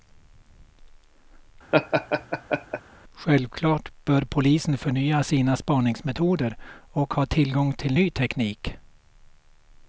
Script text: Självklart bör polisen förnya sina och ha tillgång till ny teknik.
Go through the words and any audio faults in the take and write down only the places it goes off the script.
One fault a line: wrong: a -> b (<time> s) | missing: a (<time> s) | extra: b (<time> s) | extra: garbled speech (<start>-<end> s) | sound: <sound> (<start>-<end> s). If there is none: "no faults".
sound: laugh (1.7-2.8 s)
extra: spaningsmetoder (5.6 s)